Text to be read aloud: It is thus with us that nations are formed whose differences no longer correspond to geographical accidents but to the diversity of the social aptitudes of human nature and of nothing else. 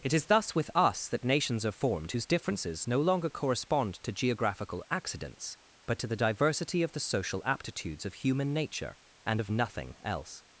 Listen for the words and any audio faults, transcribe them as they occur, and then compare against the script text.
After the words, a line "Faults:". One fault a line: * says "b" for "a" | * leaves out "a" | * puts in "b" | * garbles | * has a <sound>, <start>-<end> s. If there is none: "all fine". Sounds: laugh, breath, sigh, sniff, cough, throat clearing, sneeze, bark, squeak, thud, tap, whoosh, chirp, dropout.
It is thus with us that nations are formed whose differences no longer correspond to geographical accidents but to the diversity of the social aptitudes of human nature and of nothing else.
Faults:
all fine